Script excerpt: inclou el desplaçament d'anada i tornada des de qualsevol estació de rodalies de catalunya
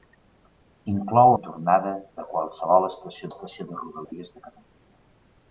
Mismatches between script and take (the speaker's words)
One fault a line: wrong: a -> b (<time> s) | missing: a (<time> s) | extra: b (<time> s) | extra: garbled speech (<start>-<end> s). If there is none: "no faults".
missing: el desplaçament d'anada (1.3 s)
missing: des (1.9 s)
extra: estació (3.3 s)